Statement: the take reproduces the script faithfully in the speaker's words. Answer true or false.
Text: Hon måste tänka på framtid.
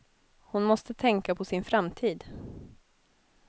false